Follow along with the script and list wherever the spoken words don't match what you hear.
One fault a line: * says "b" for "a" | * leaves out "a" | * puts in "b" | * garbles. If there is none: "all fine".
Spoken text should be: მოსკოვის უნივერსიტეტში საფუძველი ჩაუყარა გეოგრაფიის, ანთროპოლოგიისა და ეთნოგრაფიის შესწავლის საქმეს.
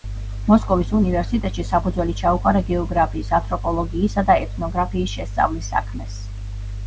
all fine